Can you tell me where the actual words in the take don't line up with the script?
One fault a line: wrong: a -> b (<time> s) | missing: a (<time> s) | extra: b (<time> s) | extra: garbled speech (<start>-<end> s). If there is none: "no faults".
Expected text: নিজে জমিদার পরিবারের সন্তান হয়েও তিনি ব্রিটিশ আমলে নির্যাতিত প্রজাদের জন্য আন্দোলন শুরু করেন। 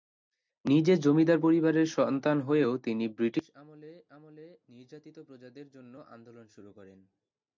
extra: আমলে (4.1 s)